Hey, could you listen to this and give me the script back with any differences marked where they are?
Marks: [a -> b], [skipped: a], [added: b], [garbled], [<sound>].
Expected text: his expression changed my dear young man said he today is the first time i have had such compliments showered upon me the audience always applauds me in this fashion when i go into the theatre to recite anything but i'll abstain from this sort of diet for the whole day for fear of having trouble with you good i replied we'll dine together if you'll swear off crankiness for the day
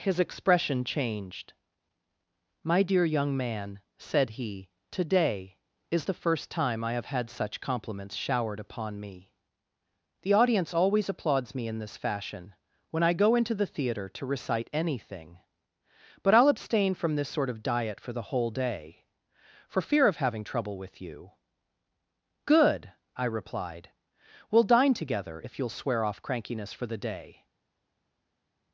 his expression changed my dear young man said he today is the first time i have had such compliments showered upon me the audience always applauds me in this fashion when i go into the theatre to recite anything but i'll abstain from this sort of diet for the whole day for fear of having trouble with you good i replied we'll dine together if you'll swear off crankiness for the day